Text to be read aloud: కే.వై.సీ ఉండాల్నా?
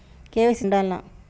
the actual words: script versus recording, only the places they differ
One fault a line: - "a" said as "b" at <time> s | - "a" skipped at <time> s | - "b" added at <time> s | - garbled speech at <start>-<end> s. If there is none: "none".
none